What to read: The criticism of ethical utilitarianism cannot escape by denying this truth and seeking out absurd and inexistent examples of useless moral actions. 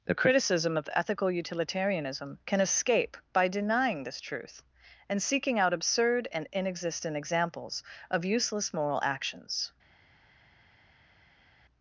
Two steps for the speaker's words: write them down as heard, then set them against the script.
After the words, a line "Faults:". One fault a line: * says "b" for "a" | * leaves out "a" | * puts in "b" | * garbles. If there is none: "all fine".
The criticism of ethical utilitarianism can escape by denying this truth and seeking out absurd and inexistent examples of useless moral actions.
Faults:
* says "can" for "cannot"